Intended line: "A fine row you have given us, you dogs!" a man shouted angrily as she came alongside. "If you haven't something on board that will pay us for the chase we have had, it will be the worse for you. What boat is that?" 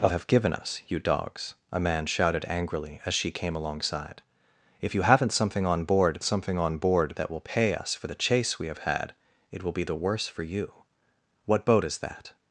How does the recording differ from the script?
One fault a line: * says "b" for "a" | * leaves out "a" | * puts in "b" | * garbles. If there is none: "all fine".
* leaves out "fine row you"
* puts in "something on board"